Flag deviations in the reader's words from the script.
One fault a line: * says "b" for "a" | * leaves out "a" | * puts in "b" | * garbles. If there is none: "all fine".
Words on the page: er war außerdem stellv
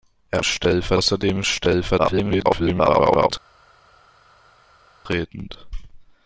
* says "stellv" for "war"
* garbles